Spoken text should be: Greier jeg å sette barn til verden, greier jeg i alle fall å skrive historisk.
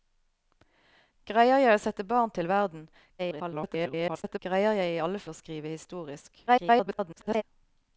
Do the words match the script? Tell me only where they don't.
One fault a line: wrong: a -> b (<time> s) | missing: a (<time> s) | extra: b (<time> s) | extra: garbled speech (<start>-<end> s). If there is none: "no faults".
extra: garbled speech (3.2-4.4 s)
missing: fall (5.2 s)
extra: garbled speech (6.5-7.4 s)